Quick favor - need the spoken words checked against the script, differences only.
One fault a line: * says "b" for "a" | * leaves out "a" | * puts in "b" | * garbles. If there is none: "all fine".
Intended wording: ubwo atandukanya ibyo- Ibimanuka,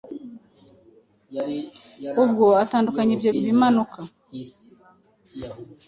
all fine